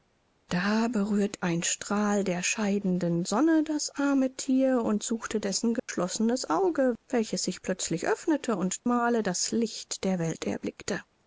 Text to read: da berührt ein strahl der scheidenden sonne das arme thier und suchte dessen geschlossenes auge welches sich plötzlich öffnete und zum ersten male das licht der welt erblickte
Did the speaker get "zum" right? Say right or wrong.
wrong